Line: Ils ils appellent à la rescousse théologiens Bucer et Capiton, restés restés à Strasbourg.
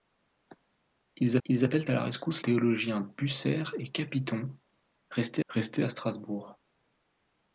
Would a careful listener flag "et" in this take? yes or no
no